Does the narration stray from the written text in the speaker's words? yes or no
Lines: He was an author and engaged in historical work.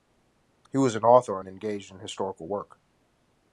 no